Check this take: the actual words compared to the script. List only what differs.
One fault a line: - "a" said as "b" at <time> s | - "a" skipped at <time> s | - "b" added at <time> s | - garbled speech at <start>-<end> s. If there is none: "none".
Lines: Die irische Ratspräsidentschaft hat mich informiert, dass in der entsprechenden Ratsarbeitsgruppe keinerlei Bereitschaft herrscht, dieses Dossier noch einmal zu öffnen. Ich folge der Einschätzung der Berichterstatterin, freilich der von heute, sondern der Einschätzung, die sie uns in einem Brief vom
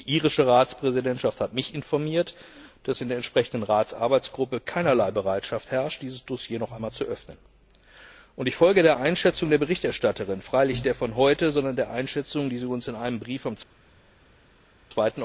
none